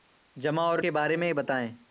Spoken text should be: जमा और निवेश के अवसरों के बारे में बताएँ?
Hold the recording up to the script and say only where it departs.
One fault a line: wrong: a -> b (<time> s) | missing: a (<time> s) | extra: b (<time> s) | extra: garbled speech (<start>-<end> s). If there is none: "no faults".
missing: निवेश के अवसरों (0.8 s)